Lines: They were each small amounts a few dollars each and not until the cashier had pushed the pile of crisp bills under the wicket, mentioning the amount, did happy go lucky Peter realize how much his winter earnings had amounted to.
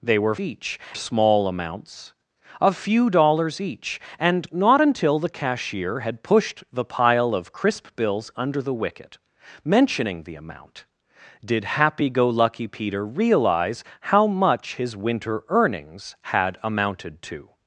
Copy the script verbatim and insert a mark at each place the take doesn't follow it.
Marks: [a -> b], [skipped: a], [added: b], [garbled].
They were each small amounts a few dollars each and not until the cashier had pushed the pile of crisp bills under the wicket, mentioning the amount, did happy go lucky Peter realize how much his winter earnings had amounted to.